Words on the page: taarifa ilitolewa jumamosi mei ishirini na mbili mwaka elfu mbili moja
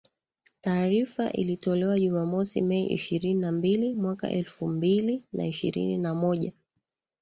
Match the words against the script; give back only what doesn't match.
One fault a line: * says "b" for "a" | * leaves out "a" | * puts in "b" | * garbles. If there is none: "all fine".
* puts in "na ishirini na"